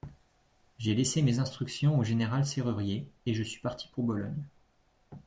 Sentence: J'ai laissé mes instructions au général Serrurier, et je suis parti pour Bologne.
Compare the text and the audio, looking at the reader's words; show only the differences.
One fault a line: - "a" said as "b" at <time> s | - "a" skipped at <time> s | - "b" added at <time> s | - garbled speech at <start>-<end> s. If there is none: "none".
none